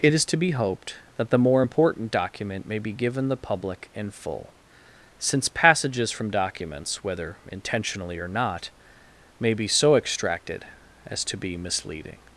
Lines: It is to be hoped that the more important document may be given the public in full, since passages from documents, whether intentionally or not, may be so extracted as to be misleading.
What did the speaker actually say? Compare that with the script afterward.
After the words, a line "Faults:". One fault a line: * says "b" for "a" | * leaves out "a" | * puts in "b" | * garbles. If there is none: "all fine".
It is to be hoped that the more important document may be given the public in full, since passages from documents, whether intentionally or not, may be so extracted as to be misleading.
Faults:
all fine